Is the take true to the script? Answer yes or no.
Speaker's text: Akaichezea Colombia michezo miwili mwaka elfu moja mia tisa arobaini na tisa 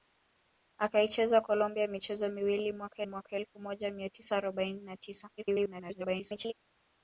no